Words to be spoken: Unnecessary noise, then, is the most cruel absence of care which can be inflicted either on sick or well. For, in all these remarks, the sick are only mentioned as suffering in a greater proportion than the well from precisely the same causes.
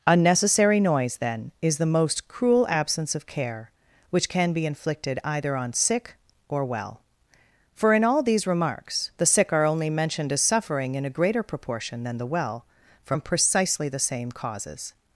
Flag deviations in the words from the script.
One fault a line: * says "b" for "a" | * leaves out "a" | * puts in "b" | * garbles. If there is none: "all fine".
all fine